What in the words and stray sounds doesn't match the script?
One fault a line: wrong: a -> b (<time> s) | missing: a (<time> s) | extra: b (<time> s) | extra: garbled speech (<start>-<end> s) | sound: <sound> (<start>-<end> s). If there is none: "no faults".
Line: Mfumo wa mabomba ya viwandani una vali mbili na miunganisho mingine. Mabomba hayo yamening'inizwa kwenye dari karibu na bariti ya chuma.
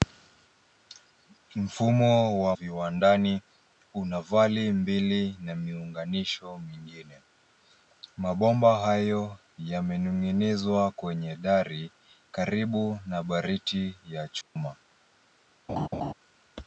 missing: mabomba ya (2.6 s)
sound: dropout (14.4-14.6 s)
sound: laugh (15.7-16.1 s)